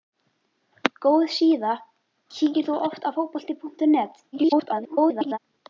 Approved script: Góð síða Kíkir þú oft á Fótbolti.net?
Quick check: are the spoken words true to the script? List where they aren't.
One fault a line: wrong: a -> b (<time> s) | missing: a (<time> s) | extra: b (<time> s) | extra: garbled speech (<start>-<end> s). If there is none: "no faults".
extra: garbled speech (4.3-5.4 s)